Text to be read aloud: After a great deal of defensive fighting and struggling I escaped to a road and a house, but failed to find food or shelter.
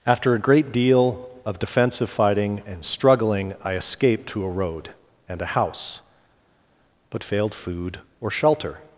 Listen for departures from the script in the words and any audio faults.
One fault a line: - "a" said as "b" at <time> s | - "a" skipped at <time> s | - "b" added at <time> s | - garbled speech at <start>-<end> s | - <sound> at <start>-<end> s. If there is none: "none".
- "to find" skipped at 7.5 s